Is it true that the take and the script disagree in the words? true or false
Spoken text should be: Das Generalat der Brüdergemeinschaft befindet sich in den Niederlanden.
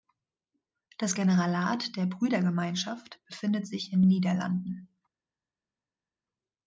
true